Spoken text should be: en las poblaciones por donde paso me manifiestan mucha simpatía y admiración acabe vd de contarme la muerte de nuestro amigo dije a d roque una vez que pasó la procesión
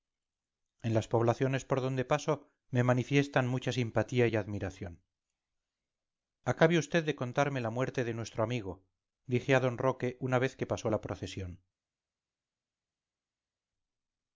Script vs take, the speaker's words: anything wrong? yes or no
no